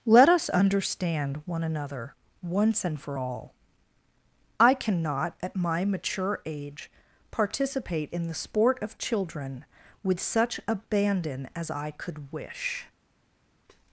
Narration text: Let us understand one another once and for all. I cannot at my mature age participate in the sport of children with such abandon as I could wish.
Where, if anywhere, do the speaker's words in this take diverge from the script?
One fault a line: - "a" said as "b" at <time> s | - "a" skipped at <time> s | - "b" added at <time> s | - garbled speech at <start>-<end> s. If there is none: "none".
none